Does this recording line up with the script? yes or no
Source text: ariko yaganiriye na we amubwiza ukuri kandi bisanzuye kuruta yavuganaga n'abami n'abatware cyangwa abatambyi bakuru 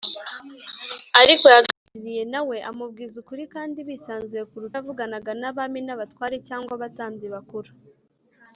yes